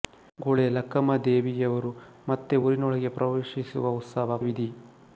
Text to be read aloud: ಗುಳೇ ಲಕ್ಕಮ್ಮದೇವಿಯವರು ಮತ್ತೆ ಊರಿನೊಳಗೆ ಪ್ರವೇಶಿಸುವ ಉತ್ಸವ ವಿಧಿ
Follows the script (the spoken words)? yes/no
yes